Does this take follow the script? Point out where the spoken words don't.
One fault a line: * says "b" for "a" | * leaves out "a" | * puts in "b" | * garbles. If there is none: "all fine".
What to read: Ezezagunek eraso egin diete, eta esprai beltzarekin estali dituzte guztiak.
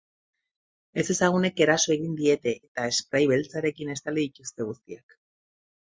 all fine